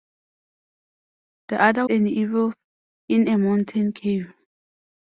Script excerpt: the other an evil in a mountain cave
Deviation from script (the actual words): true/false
false